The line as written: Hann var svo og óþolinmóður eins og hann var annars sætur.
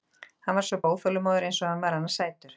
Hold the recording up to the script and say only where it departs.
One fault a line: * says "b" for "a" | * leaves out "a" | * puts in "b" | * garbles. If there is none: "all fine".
all fine